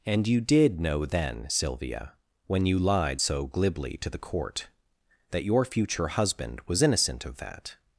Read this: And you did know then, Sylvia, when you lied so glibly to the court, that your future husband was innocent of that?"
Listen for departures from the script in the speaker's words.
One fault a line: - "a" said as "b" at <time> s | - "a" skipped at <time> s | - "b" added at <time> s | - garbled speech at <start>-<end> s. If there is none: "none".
none